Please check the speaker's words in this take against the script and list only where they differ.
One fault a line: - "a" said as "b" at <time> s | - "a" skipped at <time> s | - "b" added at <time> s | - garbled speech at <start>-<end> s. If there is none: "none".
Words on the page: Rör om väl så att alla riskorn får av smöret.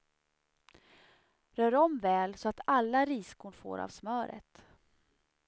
none